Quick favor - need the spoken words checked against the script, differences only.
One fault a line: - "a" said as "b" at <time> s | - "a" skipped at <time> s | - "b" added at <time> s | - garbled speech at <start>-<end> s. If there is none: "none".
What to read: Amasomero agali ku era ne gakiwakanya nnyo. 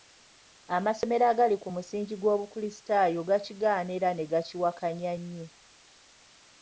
- "musingi gw'obukulisitaayo gakigaana" added at 1.7 s